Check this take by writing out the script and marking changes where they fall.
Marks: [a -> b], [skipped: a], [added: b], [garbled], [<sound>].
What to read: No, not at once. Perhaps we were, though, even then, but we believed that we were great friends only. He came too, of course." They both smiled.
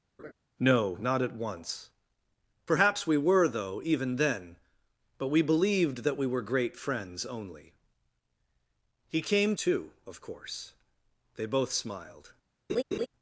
[laugh] No, not at once. Perhaps we were, though, even then, but we believed that we were great friends only. He came too, of course." They both smiled. [laugh]